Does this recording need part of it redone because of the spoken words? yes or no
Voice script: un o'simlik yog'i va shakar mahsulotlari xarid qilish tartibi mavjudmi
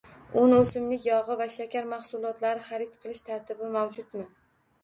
no